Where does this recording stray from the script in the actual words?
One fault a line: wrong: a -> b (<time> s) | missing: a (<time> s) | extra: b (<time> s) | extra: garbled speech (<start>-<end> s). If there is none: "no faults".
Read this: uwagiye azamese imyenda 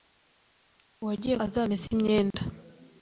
no faults